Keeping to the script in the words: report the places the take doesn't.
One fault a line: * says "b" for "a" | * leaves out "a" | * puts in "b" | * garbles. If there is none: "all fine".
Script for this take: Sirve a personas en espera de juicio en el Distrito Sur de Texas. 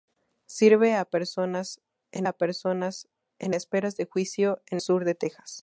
* puts in "a personas en"
* leaves out "el Distrito"